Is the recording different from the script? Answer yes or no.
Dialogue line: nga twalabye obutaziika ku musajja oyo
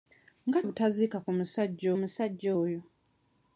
yes